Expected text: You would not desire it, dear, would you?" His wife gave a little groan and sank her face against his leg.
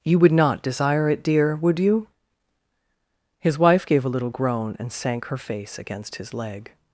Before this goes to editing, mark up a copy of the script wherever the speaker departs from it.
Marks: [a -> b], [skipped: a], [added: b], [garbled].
You would not desire it, dear, would you?" His wife gave a little groan and sank her face against his leg.